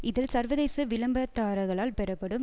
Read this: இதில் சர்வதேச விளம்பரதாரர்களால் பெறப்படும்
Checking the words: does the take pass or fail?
pass